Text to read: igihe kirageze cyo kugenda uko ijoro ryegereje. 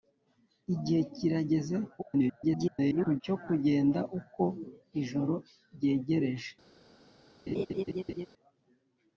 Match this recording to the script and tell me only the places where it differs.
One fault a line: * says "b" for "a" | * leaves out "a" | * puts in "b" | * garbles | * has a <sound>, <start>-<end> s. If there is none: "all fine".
* garbles
* has a laugh, 7.5-8.3 s